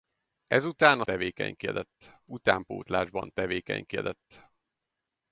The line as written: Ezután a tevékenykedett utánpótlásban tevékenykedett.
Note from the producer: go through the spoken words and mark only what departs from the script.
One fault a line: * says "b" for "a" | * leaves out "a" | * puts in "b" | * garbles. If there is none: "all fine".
all fine